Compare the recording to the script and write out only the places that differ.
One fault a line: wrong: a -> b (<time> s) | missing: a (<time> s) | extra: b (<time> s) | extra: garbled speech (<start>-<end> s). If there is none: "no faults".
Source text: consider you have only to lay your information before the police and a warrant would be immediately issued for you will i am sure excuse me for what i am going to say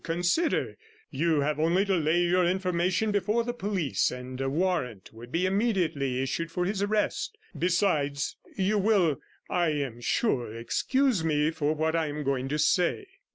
extra: his arrest besides (6.7 s)